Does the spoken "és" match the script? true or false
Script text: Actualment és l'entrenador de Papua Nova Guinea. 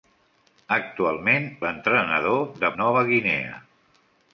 false